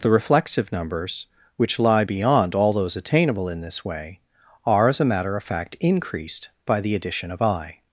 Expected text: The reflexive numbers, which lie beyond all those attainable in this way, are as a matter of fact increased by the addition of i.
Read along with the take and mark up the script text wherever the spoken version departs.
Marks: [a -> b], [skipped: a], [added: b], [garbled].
The reflexive numbers, which lie beyond all those attainable in this way, are as a matter of fact increased by the addition of i.